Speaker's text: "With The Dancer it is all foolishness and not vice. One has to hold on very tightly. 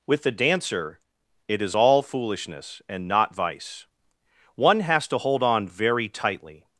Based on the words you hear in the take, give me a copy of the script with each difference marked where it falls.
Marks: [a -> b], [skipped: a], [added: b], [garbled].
"With The Dancer it is all foolishness and not vice. One has to hold on very tightly.